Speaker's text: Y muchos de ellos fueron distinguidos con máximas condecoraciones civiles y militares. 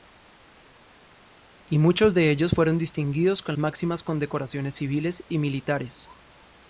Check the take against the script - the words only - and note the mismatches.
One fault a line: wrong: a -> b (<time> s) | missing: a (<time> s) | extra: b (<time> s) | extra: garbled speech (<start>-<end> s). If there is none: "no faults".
no faults